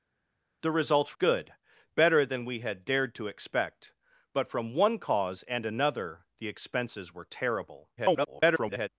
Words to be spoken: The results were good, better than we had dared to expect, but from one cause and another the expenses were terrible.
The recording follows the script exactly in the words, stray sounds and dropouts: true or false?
false